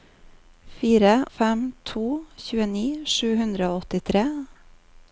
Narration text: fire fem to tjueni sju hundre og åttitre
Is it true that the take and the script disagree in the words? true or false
false